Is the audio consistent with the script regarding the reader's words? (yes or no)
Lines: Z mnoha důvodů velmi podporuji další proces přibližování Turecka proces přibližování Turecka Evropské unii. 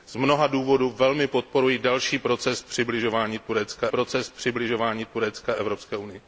yes